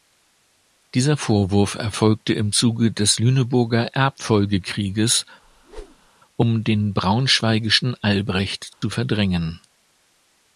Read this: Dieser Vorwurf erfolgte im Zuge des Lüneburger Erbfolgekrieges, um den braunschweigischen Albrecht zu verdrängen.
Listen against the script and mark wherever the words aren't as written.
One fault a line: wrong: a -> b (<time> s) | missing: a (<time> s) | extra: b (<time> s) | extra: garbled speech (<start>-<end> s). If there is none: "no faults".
no faults